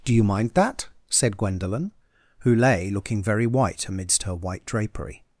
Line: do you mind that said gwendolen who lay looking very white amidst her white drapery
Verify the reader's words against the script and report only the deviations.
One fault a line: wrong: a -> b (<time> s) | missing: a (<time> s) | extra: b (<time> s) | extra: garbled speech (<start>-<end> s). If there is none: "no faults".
no faults